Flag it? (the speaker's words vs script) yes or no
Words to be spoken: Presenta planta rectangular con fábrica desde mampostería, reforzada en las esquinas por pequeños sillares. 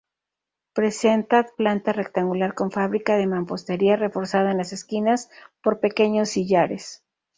yes